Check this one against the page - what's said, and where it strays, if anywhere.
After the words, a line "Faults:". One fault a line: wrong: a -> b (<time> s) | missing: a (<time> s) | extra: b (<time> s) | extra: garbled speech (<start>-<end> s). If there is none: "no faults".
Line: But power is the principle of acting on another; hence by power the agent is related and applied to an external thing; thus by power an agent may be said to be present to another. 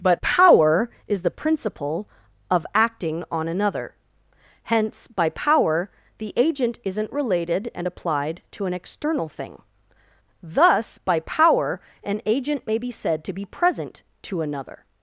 But power is the principle of acting on another; hence by power the agent isn't related and applied to an external thing; thus by power an agent may be said to be present to another.
Faults:
wrong: is -> isn't (6.8 s)